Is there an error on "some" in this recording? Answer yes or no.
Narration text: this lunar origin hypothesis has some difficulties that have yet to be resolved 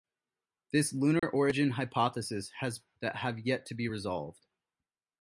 yes